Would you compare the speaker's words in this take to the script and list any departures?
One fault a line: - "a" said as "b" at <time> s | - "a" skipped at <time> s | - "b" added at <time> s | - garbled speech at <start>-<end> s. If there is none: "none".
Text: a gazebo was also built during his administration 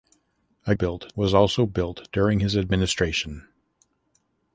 - "gazebo" said as "built" at 0.7 s